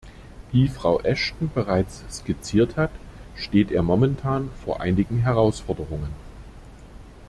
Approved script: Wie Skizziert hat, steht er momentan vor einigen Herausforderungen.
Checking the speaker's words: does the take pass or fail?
fail